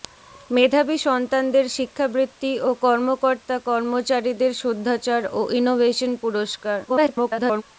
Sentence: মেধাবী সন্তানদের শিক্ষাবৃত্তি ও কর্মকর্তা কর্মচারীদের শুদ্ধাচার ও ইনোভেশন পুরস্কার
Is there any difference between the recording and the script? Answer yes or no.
yes